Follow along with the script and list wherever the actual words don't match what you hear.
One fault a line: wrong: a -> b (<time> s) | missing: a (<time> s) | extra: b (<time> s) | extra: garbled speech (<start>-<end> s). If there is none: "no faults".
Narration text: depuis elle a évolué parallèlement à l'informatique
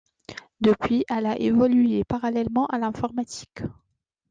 no faults